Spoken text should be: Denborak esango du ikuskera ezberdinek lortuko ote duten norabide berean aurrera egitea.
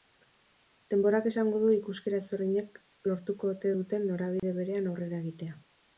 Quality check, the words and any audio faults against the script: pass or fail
fail